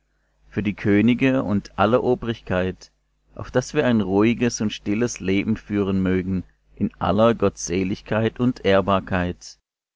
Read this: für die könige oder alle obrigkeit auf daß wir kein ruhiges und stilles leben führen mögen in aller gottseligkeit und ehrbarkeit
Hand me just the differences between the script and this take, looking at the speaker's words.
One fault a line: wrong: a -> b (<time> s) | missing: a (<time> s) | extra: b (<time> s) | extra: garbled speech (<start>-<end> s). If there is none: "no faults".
wrong: oder -> und (1.4 s)
wrong: kein -> ein (3.9 s)